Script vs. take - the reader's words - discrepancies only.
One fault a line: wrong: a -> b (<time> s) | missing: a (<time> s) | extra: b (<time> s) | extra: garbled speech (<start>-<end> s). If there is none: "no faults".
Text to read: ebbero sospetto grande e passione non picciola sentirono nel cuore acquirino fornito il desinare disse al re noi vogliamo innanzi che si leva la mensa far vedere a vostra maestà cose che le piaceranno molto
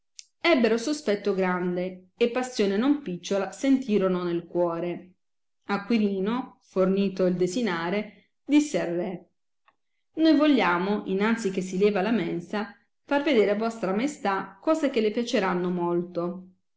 no faults